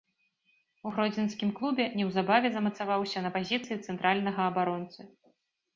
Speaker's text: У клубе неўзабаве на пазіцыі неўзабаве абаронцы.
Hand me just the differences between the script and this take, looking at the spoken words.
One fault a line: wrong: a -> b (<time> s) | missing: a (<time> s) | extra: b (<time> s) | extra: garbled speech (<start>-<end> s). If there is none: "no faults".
extra: гродзенскім (0.9 s)
extra: замацаваўся (2.6 s)
wrong: неўзабаве -> цэнтральнага (3.8 s)